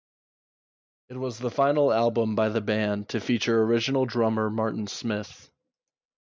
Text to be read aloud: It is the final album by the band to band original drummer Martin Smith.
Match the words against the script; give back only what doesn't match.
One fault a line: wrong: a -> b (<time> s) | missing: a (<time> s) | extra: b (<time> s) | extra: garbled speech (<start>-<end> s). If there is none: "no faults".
wrong: is -> was (1.2 s)
wrong: band -> feature (3.2 s)